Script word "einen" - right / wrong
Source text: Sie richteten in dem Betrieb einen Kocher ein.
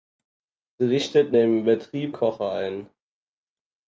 wrong